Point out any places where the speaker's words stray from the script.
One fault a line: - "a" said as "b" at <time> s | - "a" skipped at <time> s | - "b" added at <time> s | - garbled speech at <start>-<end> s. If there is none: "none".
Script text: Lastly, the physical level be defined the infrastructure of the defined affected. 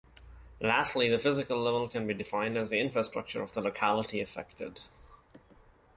- "can" added at 1.9 s
- "as" added at 2.6 s
- "defined" said as "locality" at 3.6 s